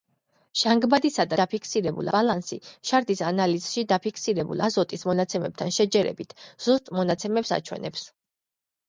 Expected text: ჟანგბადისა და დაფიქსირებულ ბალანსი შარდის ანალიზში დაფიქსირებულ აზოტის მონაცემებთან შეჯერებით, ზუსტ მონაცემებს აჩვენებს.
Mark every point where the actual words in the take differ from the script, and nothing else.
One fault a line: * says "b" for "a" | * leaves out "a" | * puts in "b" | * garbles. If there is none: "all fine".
all fine